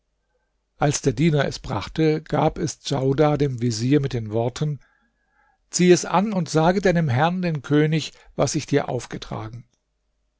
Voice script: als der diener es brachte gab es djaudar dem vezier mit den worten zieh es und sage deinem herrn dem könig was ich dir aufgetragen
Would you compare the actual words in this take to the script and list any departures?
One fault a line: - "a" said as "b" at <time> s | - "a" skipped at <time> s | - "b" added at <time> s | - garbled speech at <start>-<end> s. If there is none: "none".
- "an" added at 6.0 s